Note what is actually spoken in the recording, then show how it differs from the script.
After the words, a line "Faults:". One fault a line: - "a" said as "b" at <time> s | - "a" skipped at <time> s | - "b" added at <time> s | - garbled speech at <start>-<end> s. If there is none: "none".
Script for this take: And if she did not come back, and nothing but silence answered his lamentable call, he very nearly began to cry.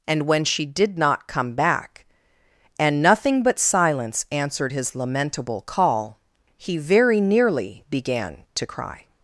And when she did not come back, and nothing but silence answered his lamentable call, he very nearly began to cry.
Faults:
- "if" said as "when" at 0.3 s